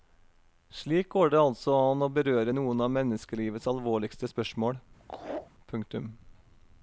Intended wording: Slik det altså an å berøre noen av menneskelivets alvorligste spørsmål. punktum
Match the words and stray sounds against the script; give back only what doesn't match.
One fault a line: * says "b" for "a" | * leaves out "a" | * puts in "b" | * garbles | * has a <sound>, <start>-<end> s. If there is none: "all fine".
* puts in "går"
* has a laugh, 5.0-5.5 s